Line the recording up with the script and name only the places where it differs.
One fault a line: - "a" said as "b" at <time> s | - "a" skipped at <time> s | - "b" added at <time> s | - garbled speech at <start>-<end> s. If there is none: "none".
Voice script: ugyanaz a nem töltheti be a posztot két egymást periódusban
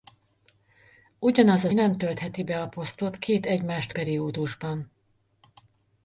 none